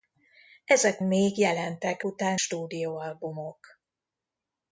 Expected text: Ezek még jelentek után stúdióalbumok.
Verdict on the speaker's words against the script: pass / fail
pass